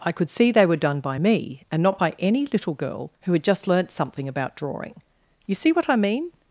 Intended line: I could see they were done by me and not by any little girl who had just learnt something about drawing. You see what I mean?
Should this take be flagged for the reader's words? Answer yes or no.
no